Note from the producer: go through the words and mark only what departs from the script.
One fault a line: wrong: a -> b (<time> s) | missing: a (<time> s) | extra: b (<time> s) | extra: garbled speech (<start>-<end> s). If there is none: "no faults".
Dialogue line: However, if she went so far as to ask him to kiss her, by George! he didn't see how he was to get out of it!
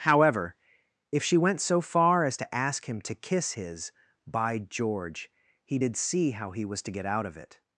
wrong: her -> his (3.5 s)
wrong: didn't -> did (5.8 s)